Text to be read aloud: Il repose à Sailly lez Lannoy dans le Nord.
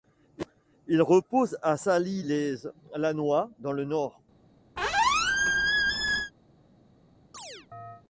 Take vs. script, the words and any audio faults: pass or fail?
fail